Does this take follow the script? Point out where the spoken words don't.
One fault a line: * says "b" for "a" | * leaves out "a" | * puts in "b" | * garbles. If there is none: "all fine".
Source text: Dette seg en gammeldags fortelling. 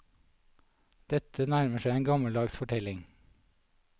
* puts in "nærmer"